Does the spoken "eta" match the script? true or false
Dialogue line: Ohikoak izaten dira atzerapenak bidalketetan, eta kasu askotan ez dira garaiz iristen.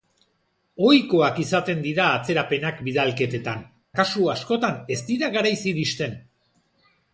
false